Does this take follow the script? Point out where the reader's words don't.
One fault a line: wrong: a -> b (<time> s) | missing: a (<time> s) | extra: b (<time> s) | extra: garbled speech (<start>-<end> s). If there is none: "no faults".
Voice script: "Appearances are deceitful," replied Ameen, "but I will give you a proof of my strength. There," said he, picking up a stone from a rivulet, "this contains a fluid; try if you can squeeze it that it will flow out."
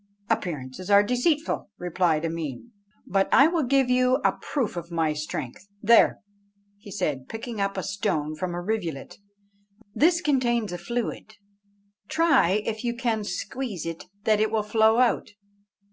no faults